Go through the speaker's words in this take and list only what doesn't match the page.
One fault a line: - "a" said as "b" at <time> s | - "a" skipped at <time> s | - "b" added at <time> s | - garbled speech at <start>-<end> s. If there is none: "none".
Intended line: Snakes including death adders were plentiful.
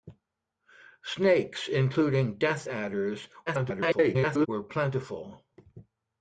- garbled speech at 3.5-4.5 s